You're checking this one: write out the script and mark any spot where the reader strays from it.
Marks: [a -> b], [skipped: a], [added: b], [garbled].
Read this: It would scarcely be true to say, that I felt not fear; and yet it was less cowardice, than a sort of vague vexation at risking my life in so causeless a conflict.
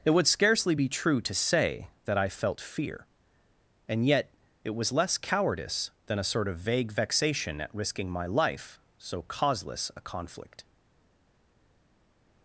It would scarcely be true to say, that I felt [skipped: not] fear; and yet it was less cowardice, than a sort of vague vexation at risking my life [skipped: in] so causeless a conflict.